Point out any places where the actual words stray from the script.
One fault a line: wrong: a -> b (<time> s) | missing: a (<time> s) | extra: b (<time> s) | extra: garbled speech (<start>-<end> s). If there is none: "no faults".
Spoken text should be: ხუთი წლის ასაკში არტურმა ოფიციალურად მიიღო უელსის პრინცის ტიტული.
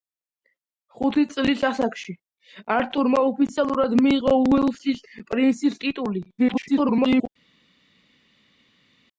extra: garbled speech (6.4-7.3 s)